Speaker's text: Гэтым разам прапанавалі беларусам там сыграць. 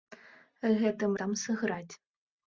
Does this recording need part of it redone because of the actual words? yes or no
yes